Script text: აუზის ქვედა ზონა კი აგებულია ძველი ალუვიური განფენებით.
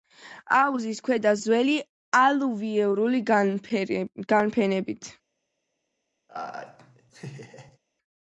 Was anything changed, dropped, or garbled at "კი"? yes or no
yes